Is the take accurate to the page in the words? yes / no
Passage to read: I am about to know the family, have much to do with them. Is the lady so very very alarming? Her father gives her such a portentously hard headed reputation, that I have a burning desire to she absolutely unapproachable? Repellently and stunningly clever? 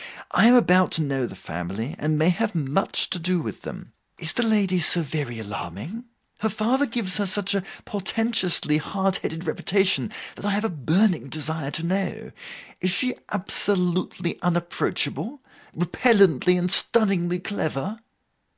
no